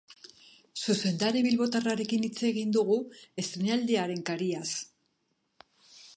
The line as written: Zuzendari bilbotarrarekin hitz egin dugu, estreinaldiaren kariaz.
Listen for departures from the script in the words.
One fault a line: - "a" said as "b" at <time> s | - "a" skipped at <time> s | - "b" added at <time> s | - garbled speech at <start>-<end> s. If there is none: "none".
none